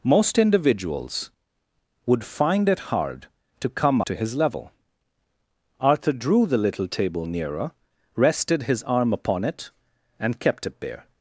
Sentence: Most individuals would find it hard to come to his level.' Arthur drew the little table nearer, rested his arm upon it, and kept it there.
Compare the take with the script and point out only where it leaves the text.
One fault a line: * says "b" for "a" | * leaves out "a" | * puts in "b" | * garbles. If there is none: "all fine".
all fine